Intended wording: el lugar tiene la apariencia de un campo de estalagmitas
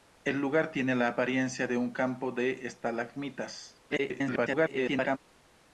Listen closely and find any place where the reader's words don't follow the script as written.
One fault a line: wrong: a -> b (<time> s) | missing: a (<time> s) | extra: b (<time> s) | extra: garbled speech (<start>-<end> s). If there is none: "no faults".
extra: garbled speech (3.9-5.2 s)